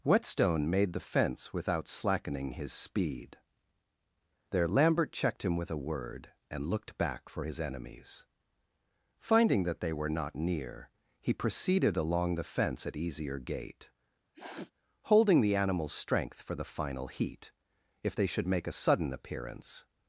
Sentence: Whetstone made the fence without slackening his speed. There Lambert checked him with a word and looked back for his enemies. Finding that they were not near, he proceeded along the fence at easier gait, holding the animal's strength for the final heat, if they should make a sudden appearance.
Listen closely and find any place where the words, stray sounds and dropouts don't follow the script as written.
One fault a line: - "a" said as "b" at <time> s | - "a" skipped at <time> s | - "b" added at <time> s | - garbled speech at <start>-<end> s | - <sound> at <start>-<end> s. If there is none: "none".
- sniff at 14.3-14.7 s